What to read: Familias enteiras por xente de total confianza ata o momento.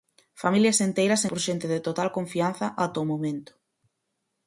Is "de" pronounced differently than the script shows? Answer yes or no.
no